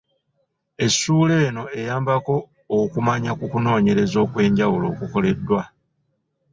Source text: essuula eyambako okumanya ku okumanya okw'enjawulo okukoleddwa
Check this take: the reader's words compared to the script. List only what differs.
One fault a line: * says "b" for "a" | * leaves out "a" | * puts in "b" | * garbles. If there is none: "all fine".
* puts in "eno"
* says "kunoonyereza" for "okumanya"